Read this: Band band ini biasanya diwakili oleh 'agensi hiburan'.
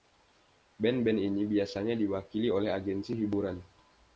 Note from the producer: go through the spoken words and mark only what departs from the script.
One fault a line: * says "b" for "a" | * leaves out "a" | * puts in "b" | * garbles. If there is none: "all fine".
all fine